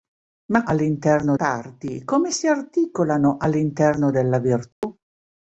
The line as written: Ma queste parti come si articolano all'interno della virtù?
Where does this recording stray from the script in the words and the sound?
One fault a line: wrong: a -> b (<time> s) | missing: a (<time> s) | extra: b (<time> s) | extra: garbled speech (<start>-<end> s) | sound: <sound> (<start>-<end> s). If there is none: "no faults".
wrong: queste -> all'interno (0.6 s)
sound: dropout (4.7-4.8 s)